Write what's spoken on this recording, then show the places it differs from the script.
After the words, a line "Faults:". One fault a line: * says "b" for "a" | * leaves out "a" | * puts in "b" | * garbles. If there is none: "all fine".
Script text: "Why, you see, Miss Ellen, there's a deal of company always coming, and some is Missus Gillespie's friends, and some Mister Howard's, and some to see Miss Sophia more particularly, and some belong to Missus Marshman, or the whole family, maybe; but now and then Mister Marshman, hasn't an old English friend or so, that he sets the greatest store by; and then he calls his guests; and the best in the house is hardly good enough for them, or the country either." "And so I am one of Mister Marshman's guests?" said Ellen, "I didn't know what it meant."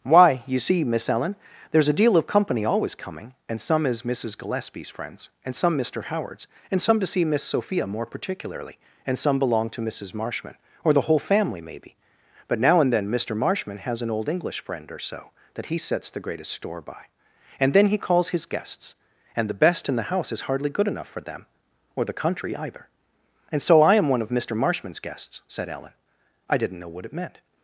"Why, you see, Miss Ellen, there's a deal of company always coming, and some is Missus Gillespie's friends, and some Mister Howard's, and some to see Miss Sophia more particularly, and some belong to Missus Marshman, or the whole family, maybe; but now and then Mister Marshman, has an old English friend or so, that he sets the greatest store by; and then he calls his guests; and the best in the house is hardly good enough for them, or the country either." "And so I am one of Mister Marshman's guests?" said Ellen, "I didn't know what it meant."
Faults:
* says "has" for "hasn't"